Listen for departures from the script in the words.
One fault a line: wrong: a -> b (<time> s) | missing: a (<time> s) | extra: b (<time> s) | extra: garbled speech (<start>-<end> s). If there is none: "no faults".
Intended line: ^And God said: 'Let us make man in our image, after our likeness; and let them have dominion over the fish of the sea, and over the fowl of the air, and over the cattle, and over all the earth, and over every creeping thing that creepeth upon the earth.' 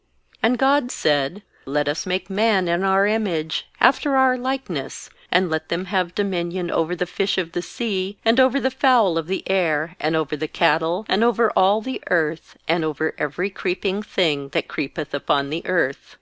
no faults